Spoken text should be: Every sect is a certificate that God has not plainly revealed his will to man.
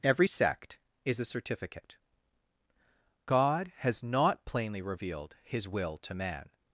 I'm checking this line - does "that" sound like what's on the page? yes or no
no